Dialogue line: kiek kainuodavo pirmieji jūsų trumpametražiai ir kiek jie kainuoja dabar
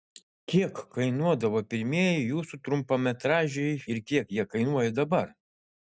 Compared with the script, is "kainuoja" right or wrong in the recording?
right